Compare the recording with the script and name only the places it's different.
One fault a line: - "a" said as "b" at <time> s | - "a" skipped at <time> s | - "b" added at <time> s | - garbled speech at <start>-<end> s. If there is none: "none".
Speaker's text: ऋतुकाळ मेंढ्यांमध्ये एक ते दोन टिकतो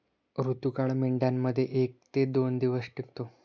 - "दिवस" added at 2.6 s